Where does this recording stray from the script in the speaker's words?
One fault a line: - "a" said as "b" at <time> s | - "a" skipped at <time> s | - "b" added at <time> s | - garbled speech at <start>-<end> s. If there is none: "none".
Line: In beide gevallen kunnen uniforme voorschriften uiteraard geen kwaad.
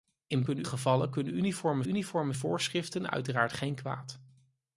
- "beide" said as "kunnen" at 0.4 s
- "uniforme" added at 1.9 s